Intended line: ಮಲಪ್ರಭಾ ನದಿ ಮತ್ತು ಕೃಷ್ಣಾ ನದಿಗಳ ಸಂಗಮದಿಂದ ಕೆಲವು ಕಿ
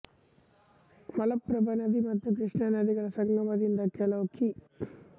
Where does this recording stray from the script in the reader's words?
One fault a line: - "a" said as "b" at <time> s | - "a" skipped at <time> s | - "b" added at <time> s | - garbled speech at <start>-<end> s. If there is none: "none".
none